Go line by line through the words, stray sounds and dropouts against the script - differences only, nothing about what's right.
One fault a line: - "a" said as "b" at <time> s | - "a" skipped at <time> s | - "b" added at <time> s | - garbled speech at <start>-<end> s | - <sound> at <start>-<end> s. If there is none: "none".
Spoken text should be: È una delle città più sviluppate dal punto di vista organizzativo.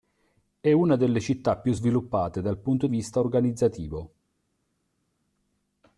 - "di" skipped at 2.9 s